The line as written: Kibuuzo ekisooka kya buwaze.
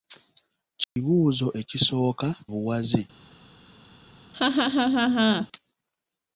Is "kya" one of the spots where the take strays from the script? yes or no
yes